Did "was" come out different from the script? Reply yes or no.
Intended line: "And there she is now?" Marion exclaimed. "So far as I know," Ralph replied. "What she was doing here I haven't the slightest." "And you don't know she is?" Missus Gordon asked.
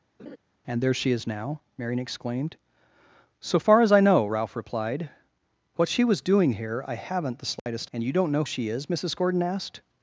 no